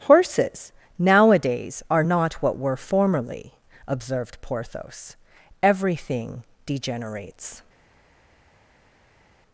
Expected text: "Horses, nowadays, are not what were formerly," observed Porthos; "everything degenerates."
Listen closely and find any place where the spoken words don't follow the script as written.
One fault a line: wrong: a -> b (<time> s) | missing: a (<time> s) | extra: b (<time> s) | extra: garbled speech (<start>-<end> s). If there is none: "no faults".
no faults